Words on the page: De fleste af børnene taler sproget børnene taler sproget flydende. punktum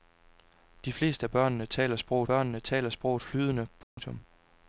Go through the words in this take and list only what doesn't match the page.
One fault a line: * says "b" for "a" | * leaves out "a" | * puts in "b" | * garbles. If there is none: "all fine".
all fine